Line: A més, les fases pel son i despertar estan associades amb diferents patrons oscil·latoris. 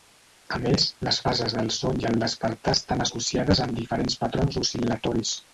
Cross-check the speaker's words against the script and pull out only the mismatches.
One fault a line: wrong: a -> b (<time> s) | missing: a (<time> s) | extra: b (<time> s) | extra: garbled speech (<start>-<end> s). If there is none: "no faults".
wrong: pel -> del (1.6 s)
extra: el (2.1 s)